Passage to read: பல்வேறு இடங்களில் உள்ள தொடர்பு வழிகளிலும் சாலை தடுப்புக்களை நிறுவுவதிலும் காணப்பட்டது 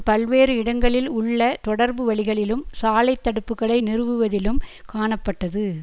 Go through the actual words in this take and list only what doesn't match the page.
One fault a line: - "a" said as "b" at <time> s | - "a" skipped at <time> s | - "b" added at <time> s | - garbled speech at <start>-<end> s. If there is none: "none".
none